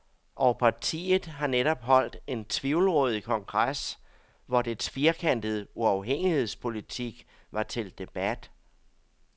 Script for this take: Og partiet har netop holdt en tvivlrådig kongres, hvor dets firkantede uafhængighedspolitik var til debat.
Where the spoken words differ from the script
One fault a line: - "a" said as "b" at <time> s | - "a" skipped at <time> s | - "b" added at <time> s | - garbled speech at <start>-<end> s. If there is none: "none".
none